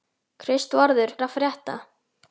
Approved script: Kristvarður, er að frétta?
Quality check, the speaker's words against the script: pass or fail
pass